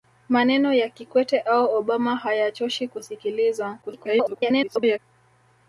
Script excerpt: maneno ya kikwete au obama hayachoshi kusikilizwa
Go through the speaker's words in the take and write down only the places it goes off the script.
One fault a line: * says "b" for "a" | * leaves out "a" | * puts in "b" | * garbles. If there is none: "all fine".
* garbles